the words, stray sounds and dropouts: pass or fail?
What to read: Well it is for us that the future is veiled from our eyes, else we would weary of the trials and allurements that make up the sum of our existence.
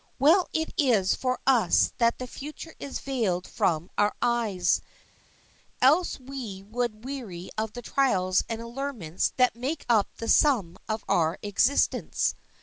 pass